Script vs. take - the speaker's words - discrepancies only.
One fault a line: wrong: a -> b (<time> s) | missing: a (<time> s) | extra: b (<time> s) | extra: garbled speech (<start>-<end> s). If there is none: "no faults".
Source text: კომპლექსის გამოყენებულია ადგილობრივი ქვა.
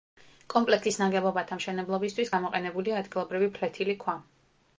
extra: ნაგებობათა მშენებლობისთვის (1.0 s)
extra: ფლეთილი (3.6 s)